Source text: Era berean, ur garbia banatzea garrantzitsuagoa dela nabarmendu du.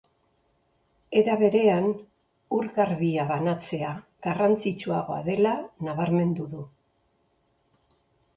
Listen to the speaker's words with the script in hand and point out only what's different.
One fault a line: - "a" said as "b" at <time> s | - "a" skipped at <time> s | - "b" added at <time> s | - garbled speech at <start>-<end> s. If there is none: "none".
none